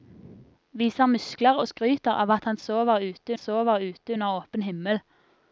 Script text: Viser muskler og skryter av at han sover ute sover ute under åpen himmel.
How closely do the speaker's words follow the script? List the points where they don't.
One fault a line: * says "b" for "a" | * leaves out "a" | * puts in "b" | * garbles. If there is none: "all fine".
all fine